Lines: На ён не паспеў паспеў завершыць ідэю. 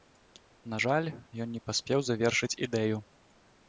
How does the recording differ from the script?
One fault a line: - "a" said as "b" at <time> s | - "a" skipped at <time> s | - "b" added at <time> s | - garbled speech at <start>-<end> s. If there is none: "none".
- "жаль" added at 0.8 s
- "паспеў" skipped at 2.0 s